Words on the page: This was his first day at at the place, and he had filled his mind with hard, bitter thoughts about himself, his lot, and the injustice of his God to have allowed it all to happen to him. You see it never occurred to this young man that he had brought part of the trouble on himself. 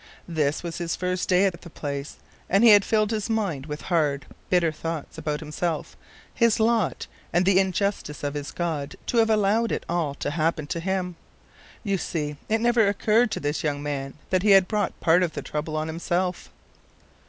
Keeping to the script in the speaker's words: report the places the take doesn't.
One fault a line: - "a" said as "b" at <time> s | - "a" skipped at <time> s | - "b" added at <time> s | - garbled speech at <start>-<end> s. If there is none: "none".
none